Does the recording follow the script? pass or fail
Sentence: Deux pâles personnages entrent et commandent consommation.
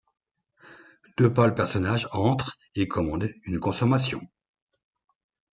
fail